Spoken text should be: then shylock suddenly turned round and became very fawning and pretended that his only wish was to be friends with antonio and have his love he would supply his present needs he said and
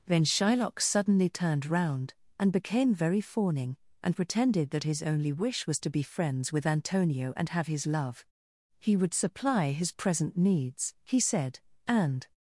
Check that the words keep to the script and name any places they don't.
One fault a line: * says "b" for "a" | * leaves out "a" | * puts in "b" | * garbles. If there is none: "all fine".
all fine